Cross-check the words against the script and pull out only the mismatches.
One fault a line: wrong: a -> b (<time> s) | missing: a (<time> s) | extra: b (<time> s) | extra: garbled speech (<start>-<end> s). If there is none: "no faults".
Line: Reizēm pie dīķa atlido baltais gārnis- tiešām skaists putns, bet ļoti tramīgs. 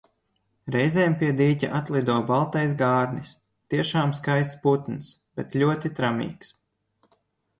no faults